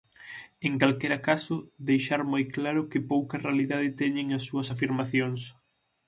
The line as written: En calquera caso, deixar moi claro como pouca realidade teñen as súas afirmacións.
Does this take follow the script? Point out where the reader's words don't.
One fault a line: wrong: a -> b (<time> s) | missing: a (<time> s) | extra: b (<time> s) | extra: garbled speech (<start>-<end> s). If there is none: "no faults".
wrong: como -> que (2.9 s)